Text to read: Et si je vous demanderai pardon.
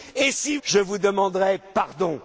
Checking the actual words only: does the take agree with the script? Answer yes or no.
yes